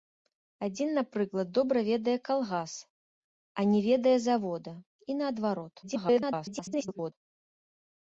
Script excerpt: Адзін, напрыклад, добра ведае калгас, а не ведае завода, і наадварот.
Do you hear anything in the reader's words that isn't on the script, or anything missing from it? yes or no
yes